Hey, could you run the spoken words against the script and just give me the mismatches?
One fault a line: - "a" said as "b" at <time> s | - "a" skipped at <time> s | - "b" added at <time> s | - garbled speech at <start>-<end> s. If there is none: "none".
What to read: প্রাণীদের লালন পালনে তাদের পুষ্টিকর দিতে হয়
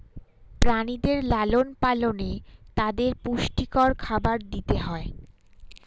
- "খাবার" added at 4.0 s